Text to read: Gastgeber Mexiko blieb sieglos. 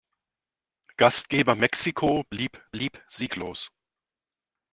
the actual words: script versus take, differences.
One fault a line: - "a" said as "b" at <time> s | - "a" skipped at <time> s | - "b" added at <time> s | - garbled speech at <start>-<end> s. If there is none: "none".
- "blieb" added at 2.7 s